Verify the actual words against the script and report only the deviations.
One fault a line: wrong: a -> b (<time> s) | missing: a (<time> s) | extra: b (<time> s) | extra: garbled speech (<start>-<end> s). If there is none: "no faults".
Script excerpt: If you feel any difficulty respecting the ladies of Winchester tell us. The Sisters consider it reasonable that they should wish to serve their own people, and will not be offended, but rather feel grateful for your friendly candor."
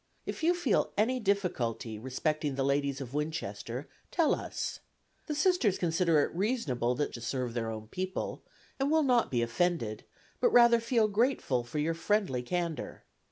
missing: they should wish (7.1 s)